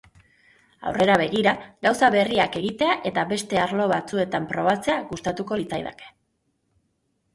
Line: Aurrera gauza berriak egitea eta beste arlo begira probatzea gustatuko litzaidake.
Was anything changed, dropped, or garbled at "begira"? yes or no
yes